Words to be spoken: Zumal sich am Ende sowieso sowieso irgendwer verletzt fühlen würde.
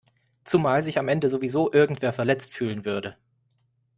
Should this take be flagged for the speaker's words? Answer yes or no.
yes